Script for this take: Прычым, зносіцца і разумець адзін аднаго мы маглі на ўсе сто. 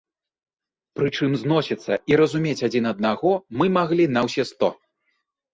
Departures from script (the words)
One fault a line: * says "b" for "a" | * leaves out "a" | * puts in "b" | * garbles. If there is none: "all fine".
all fine